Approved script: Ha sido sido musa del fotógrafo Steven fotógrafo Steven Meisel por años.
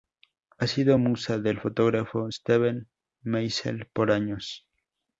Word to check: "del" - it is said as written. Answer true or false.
true